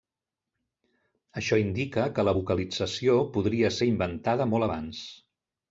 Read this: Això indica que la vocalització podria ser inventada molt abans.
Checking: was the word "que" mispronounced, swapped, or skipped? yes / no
no